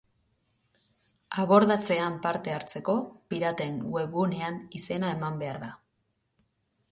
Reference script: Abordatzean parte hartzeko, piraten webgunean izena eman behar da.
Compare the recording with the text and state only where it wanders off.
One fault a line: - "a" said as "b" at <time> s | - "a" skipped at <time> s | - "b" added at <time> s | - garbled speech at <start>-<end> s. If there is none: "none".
none